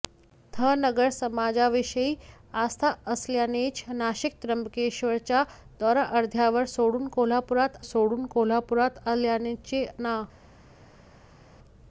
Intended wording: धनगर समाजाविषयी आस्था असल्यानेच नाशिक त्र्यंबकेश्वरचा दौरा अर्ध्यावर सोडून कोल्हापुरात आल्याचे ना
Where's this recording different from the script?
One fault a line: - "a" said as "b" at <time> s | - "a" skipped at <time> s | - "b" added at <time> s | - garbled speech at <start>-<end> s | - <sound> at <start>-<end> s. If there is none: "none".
- "सोडून कोल्हापुरात" added at 7.9 s